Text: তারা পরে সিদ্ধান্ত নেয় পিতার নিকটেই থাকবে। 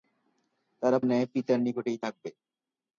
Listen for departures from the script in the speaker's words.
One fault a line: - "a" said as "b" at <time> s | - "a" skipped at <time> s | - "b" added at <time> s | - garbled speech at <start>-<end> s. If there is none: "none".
- "পরে সিদ্ধান্ত" skipped at 1.0 s